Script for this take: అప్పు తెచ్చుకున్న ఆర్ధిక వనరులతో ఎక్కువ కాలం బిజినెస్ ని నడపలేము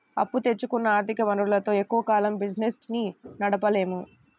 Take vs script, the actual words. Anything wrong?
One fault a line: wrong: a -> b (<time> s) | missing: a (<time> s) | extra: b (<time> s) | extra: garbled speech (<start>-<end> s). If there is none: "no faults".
no faults